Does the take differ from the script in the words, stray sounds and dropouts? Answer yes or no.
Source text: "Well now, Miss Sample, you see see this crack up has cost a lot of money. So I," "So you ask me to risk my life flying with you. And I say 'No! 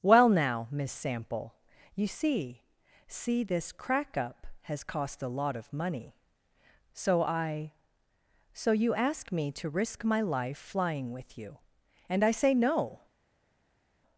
no